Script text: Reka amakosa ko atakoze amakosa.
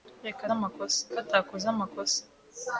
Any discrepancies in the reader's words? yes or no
no